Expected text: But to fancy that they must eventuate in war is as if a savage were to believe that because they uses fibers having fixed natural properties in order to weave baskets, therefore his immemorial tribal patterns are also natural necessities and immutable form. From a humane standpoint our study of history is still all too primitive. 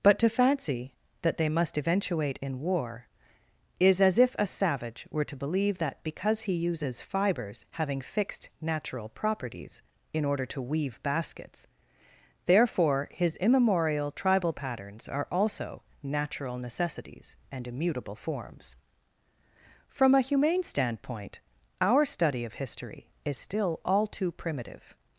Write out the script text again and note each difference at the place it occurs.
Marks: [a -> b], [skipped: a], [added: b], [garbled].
But to fancy that they must eventuate in war is as if a savage were to believe that because [they -> he] uses fibers having fixed natural properties in order to weave baskets, therefore his immemorial tribal patterns are also natural necessities and immutable [form. -> forms] From a humane standpoint our study of history is still all too primitive.